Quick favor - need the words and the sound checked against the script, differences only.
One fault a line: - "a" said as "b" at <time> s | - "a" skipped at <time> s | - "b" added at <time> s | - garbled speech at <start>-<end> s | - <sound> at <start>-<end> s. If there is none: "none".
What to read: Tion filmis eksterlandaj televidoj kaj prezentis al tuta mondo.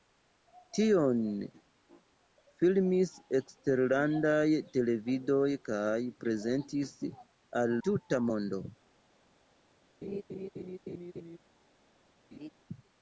- laugh at 10.0-11.4 s
- laugh at 12.3-12.5 s